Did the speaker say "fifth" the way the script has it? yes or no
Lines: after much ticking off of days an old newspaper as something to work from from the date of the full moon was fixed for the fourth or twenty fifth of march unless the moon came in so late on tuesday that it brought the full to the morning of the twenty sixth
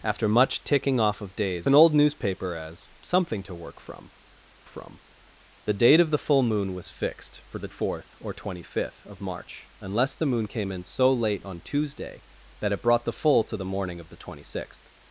yes